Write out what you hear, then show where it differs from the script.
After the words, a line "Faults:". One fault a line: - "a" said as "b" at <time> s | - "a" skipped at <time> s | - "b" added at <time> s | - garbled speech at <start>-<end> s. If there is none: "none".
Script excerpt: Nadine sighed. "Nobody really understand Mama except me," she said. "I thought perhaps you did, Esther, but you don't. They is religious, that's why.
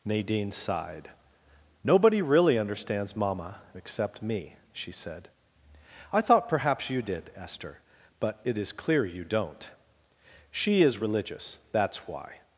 Nadine sighed. "Nobody really understands Mama except me," she said. "I thought perhaps you did, Esther, but it is clear you don't. She is religious, that's why.
Faults:
- "understand" said as "understands" at 2.6 s
- "it is clear" added at 8.4 s
- "They" said as "She" at 10.5 s